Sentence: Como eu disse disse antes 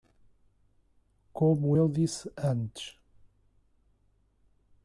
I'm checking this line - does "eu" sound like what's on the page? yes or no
yes